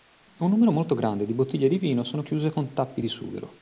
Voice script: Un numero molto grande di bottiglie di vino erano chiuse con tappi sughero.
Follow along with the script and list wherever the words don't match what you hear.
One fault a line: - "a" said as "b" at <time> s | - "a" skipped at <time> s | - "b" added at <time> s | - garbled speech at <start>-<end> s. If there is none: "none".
- "erano" said as "sono" at 2.0 s
- "di" added at 3.0 s